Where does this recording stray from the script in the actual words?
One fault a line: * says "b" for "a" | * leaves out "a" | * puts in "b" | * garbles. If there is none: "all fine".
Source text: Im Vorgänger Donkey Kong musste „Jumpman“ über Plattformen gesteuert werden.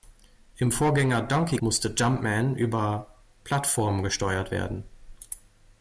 * leaves out "Kong"